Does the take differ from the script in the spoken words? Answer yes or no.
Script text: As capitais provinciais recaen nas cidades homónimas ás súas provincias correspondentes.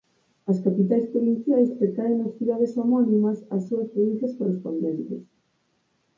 no